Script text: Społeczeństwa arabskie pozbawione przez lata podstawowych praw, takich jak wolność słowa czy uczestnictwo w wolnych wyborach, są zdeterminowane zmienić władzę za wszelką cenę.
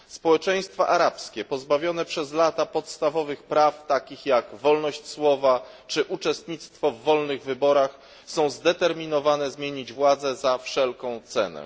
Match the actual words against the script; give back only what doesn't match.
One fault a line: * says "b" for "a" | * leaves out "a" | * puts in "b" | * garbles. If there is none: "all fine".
all fine